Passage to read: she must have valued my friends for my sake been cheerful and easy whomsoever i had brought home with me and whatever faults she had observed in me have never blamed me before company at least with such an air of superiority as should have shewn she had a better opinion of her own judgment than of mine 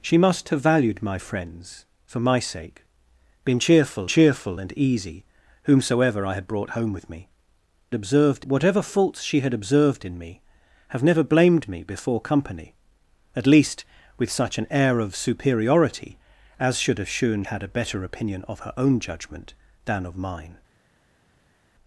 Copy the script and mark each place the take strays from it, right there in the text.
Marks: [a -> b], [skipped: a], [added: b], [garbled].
she must have valued my friends for my sake been cheerful [added: cheerful] and easy whomsoever i had brought home with me [and -> observed] whatever faults she had observed in me have never blamed me before company at least with such an air of superiority as should have shewn [skipped: she] had a better opinion of her own judgment than of mine